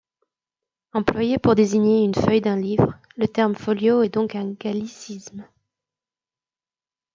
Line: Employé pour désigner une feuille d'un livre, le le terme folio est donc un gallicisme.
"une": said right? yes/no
yes